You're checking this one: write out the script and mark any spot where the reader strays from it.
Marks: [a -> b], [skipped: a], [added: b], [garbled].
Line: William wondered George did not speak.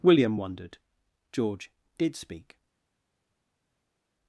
William wondered George did [skipped: not] speak.